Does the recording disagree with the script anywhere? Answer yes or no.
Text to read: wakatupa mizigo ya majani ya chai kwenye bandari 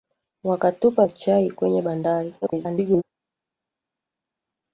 yes